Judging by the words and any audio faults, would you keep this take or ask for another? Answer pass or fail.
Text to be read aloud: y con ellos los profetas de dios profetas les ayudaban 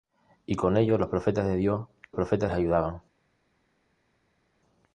pass